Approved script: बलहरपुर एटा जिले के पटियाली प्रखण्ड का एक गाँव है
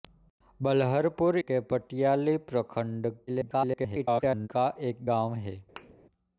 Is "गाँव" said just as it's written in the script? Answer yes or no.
yes